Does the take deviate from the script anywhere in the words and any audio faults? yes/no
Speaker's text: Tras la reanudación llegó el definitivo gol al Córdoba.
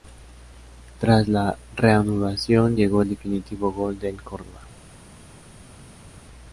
yes